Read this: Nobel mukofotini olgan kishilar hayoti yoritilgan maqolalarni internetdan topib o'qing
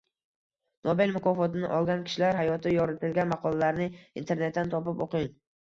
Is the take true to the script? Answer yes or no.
yes